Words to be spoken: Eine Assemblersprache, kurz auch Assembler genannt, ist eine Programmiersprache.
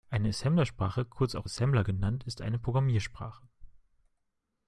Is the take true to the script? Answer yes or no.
yes